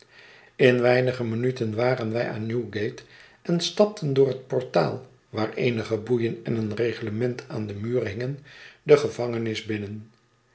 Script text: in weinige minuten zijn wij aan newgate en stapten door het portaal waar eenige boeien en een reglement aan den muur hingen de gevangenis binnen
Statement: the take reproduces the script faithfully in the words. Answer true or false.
false